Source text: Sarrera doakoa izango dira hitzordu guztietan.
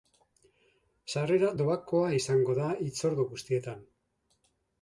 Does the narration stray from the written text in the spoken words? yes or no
yes